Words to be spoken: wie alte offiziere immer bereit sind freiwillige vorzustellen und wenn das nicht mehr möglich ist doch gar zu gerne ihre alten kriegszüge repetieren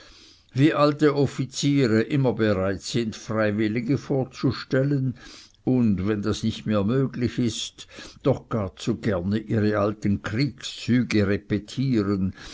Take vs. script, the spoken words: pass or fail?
pass